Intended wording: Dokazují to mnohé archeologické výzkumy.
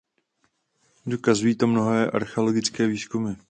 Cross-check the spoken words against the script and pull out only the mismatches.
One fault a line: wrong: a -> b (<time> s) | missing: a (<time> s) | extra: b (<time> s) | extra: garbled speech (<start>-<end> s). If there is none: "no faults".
no faults